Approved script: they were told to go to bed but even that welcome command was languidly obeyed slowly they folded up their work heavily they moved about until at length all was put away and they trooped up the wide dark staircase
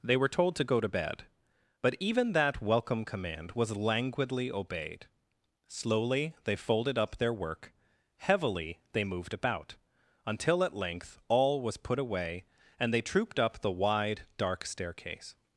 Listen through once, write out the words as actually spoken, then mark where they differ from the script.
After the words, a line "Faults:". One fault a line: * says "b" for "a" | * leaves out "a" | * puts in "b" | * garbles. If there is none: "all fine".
they were told to go to bed but even that welcome command was languidly obeyed slowly they folded up their work heavily they moved about until at length all was put away and they trooped up the wide dark staircase
Faults:
all fine